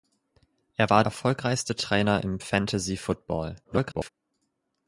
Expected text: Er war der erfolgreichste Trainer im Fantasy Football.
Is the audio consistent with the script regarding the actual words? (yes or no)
no